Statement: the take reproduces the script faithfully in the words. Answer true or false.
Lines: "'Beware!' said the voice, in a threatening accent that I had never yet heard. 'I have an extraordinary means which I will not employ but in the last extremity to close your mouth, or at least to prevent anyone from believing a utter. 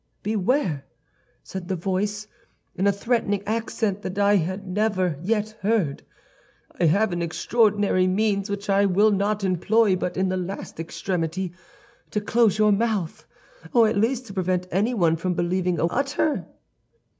true